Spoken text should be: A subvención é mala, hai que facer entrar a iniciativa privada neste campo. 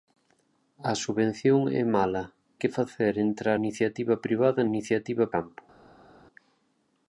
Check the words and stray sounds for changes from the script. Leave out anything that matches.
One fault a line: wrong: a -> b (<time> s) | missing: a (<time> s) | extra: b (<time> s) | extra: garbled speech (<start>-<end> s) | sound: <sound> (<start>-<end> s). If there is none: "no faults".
missing: hai (2.2 s)
missing: a (3.6 s)
wrong: neste -> iniciativa (4.7 s)